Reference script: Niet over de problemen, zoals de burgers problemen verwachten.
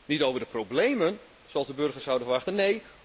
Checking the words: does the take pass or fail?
fail